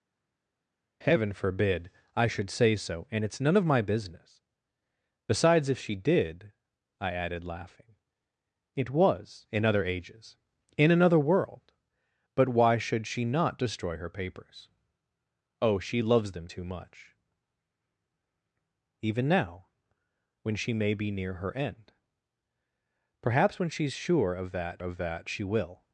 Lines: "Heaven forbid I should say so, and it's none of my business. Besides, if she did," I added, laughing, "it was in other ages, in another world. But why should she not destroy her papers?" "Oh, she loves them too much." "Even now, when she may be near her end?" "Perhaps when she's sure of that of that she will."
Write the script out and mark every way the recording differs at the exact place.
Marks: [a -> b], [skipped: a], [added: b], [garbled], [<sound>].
"Heaven forbid I should say so, and it's none of my business. Besides, if she did," I added, laughing, "it was in other ages, in another world. But why should she not destroy her papers?" "Oh, she loves them too much." "Even now, when she may be near her end?" "Perhaps when she's sure of that of that she will."